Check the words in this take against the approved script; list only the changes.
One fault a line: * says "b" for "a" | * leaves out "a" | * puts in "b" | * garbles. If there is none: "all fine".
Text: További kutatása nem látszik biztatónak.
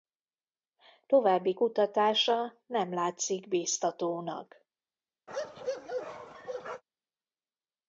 all fine